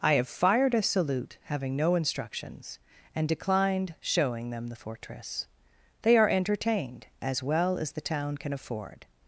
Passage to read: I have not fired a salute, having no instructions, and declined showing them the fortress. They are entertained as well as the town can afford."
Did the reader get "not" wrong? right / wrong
wrong